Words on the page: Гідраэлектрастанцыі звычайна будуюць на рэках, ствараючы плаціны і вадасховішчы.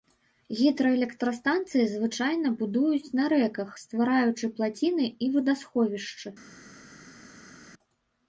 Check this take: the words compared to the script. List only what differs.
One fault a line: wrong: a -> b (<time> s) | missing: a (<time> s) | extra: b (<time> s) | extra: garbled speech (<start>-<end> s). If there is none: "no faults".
no faults